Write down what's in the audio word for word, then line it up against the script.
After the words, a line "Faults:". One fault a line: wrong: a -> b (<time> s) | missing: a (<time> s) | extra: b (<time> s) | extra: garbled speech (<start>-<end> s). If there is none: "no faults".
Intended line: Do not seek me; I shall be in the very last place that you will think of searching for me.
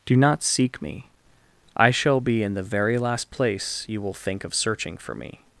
Do not seek me; I shall be in the very last place you will think of searching for me.
Faults:
missing: that (3.8 s)